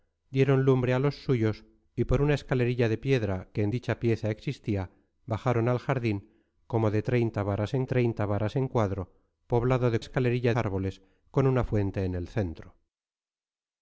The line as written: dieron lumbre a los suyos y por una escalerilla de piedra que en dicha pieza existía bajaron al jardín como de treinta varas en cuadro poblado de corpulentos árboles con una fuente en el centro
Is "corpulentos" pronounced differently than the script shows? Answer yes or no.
yes